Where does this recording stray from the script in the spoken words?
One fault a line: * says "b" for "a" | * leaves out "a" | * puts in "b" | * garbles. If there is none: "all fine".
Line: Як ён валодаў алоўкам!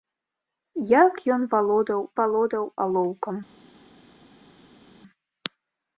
* puts in "валодаў"